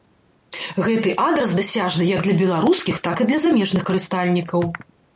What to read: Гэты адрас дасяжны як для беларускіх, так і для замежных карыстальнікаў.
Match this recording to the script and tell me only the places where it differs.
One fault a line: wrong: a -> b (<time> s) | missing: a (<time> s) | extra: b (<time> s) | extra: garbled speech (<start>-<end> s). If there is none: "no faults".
no faults